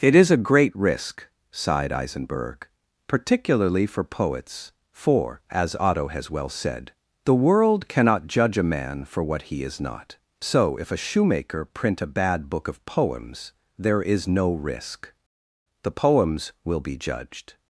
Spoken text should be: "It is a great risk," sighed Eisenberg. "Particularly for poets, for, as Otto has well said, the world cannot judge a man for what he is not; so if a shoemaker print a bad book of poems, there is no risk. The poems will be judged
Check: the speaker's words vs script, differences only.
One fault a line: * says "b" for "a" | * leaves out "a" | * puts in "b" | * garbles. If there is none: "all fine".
all fine